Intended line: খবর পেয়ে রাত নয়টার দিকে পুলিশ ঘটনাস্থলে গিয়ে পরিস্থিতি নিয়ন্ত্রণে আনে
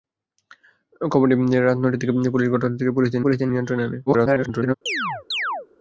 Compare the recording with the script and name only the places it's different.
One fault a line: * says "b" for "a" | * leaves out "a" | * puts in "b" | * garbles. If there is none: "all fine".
* puts in "পরিস্থিতি"
* garbles